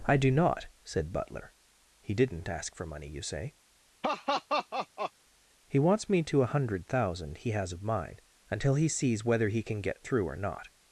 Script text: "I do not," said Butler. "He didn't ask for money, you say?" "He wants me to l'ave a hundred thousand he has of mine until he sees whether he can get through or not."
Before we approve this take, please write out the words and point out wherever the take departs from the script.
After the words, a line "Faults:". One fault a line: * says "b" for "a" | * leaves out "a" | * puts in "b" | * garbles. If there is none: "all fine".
"I do not," said Butler. "He didn't ask for money, you say?" "He wants me to a hundred thousand he has of mine until he sees whether he can get through or not."
Faults:
* leaves out "l'ave"